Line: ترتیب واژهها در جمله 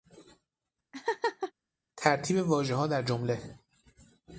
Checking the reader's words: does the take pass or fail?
pass